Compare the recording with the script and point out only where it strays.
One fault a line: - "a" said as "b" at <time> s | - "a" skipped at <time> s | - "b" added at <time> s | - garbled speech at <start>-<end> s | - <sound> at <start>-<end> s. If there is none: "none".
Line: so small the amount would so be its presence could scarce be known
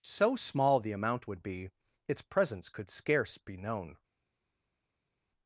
- "so" skipped at 1.4 s